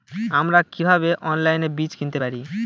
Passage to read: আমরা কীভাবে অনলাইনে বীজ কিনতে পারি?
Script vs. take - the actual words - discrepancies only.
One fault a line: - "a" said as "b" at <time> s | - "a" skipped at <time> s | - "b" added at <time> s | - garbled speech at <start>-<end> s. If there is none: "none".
none